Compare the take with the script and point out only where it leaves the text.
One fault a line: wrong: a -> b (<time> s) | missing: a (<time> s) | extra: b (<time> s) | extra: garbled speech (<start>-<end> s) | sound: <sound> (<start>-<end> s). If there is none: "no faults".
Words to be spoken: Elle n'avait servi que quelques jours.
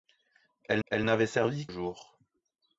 extra: elle (0.9 s)
missing: que quelques (1.7 s)